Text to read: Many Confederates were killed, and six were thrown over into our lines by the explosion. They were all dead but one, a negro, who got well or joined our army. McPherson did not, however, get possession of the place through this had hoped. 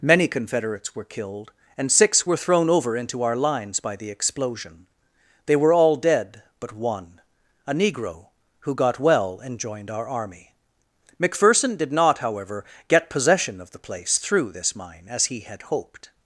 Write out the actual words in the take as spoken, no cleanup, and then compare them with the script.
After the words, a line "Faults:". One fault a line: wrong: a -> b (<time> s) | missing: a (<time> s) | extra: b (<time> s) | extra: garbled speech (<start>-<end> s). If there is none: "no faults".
Many Confederates were killed, and six were thrown over into our lines by the explosion. They were all dead but one, a negro, who got well and joined our army. McPherson did not, however, get possession of the place through this mine, as he had hoped.
Faults:
wrong: or -> and (9.4 s)
extra: mine as he (14.7 s)